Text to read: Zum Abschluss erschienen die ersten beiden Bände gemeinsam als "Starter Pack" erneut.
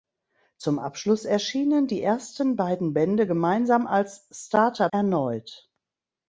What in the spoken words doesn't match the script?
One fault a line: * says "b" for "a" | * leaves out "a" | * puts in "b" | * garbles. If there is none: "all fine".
* leaves out "Pack"